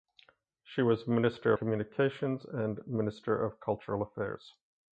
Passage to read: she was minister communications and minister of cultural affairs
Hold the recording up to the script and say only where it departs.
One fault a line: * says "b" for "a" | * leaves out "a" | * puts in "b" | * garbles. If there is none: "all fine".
all fine